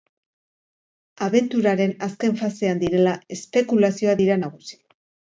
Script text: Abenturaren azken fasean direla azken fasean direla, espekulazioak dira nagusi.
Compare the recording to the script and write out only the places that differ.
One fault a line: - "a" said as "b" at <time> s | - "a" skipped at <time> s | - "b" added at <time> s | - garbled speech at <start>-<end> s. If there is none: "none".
- "azken fasean direla" skipped at 3.1 s